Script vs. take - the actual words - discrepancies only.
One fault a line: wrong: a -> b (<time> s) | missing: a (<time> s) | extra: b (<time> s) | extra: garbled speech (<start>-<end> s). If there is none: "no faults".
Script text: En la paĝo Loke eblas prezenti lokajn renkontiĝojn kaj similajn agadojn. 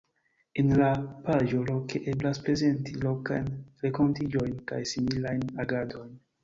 no faults